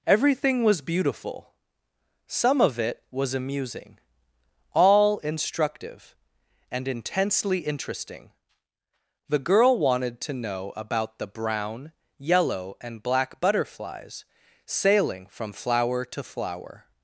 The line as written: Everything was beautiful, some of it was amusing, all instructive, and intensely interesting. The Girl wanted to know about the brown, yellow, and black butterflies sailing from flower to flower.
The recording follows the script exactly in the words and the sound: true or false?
true